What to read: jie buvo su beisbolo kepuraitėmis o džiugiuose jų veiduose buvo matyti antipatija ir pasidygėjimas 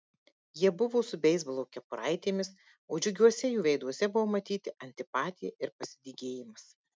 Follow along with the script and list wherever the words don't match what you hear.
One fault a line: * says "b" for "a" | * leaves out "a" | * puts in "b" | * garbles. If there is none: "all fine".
all fine